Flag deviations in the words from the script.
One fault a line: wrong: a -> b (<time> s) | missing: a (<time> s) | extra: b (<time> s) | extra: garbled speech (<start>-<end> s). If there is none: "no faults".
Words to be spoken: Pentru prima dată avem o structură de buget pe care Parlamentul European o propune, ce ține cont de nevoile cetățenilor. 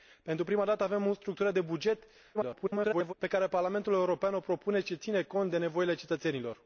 extra: garbled speech (2.3-3.1 s)